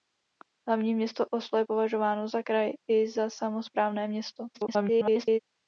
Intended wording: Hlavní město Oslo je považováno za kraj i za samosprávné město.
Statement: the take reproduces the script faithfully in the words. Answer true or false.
false